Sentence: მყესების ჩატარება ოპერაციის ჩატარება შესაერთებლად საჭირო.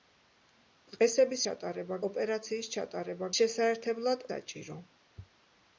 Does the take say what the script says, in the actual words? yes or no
yes